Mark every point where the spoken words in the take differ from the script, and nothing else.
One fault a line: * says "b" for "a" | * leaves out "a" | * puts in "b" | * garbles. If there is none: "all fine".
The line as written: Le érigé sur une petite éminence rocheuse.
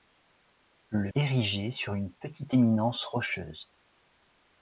all fine